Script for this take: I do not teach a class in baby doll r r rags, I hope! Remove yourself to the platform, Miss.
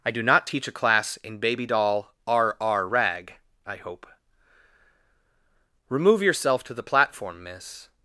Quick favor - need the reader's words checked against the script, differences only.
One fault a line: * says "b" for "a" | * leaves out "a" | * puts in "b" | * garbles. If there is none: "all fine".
* says "rag" for "rags"